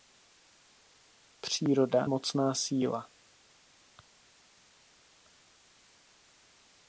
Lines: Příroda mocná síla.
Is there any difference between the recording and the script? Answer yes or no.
no